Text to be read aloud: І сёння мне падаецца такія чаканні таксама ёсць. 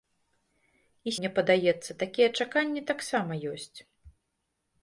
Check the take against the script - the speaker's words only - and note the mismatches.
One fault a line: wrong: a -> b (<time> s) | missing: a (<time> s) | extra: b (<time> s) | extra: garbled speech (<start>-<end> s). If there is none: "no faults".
missing: сёння (1.1 s)